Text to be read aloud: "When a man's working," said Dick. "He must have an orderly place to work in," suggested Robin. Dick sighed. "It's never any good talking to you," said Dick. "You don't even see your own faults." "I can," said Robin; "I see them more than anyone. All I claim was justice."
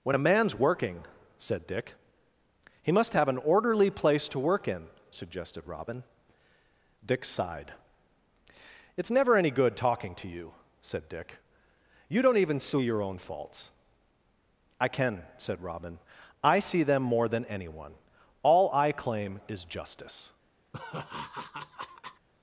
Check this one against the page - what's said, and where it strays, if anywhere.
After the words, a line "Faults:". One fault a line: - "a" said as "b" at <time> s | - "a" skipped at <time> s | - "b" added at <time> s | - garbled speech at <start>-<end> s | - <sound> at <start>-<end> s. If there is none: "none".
"When a man's working," said Dick. "He must have an orderly place to work in," suggested Robin. Dick sighed. "It's never any good talking to you," said Dick. "You don't even see your own faults." "I can," said Robin; "I see them more than anyone. All I claim is justice."
Faults:
- "was" said as "is" at 19.5 s
- laugh at 20.7-22.3 s